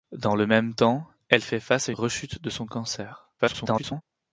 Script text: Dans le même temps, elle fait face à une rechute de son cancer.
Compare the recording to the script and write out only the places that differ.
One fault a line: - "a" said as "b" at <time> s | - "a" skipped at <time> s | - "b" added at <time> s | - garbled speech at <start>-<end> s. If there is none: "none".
- "une" skipped at 1.9 s
- garbled speech at 3.4-4.0 s